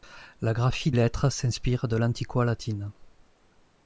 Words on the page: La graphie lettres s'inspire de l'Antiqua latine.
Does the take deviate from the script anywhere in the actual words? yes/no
no